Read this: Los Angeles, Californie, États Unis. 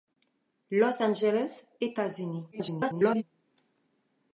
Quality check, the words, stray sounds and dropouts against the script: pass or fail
fail